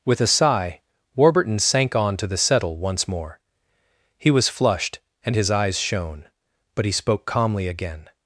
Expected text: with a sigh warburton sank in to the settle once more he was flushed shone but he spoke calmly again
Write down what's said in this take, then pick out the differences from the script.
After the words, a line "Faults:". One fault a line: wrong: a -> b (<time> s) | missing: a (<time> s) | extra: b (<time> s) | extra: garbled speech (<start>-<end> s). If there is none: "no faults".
with a sigh warburton sank on to the settle once more he was flushed and his eyes shone but he spoke calmly again
Faults:
wrong: in -> on (1.9 s)
extra: and his eyes (5.2 s)